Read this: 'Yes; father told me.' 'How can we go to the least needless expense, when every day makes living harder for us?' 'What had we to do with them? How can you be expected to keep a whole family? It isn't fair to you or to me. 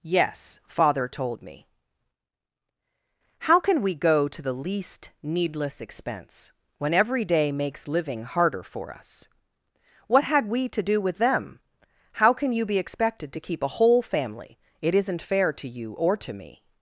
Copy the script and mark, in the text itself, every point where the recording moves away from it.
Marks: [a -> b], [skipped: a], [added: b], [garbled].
'Yes; father told me.' 'How can we go to the least needless expense, when every day makes living harder for us?' 'What had we to do with them? How can you be expected to keep a whole family? It isn't fair to you or to me.